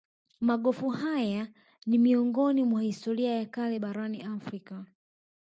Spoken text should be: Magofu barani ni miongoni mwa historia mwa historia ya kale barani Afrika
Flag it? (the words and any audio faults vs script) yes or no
yes